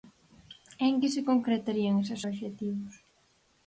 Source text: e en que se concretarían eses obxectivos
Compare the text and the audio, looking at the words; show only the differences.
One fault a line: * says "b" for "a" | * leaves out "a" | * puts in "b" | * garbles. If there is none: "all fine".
all fine